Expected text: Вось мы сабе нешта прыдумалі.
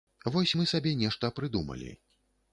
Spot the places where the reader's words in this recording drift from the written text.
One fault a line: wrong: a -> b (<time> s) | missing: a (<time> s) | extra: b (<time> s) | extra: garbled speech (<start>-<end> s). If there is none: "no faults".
no faults